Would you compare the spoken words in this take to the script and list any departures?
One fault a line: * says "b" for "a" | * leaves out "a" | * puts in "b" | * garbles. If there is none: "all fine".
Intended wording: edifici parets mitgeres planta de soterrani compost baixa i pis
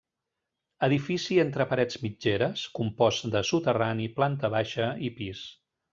* puts in "entre"
* says "compost" for "planta"
* says "planta" for "compost"